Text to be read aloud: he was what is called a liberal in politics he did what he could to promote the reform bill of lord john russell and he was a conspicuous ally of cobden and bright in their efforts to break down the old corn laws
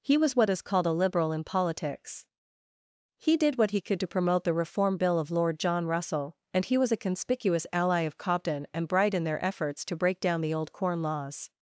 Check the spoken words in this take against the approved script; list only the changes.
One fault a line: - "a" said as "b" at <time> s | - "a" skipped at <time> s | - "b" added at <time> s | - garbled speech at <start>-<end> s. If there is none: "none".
none